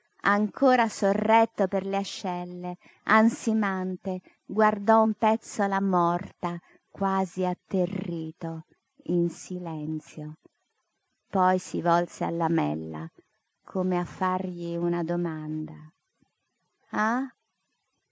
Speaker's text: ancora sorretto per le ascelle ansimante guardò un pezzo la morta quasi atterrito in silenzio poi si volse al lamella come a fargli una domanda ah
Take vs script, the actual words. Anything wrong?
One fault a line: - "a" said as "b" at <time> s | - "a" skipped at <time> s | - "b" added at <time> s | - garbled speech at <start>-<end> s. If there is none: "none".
none